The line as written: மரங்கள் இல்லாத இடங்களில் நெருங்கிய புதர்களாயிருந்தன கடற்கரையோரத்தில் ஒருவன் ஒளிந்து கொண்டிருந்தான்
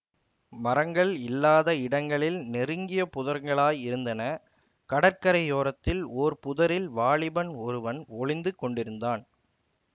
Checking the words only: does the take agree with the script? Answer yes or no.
no